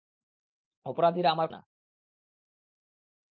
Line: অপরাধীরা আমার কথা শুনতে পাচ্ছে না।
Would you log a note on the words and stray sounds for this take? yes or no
yes